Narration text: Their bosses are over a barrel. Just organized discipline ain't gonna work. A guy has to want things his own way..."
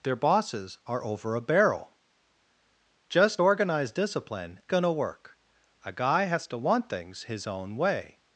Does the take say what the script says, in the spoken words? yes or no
no